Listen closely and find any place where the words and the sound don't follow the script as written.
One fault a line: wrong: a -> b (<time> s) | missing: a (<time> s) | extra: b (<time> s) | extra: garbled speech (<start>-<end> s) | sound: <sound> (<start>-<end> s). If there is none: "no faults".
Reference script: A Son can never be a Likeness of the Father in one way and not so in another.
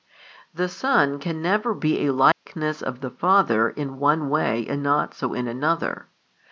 wrong: A -> The (0.5 s)
sound: dropout (2.3-2.5 s)